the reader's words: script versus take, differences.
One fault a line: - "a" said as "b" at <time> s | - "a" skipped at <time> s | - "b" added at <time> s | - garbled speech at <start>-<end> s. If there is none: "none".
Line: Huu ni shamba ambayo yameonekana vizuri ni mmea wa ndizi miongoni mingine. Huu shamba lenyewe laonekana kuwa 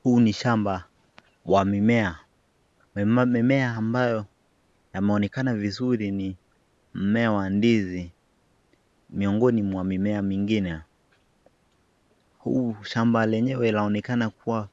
- "wa mimea mimea" added at 1.4 s
- "mwa mimea" added at 9.6 s